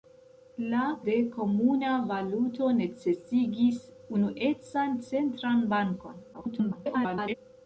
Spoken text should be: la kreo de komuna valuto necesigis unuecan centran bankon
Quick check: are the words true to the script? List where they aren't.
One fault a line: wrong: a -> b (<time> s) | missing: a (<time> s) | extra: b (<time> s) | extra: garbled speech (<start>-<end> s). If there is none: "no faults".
missing: kreo (0.8 s)
extra: garbled speech (6.3-7.3 s)